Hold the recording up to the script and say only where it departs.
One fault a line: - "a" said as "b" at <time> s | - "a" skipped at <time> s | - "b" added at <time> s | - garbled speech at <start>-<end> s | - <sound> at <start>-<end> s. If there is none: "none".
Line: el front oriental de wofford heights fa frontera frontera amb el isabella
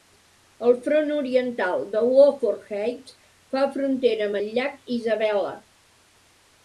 - "frontera" skipped at 4.3 s
- "llac" added at 4.6 s